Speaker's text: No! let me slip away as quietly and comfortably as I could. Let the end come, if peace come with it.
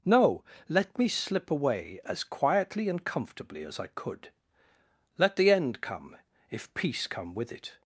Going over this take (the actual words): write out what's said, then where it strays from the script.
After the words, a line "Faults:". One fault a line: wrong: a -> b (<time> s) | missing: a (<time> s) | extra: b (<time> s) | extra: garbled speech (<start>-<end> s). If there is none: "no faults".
No! let me slip away as quietly and comfortably as I could. Let the end come, if peace come with it.
Faults:
no faults